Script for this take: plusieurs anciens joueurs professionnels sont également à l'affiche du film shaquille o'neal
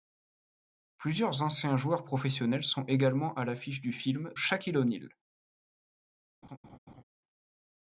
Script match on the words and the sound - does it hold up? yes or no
no